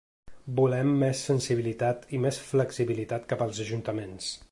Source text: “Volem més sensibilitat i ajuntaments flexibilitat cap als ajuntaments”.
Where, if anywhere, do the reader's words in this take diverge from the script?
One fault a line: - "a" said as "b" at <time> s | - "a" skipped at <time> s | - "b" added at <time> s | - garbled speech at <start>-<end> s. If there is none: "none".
- "ajuntaments" said as "més" at 2.3 s